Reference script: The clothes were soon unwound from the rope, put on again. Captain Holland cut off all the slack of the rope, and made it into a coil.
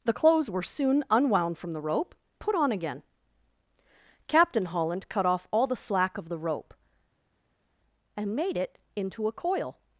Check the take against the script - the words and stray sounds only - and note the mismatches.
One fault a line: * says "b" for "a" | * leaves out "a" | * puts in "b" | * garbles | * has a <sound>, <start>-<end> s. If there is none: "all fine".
all fine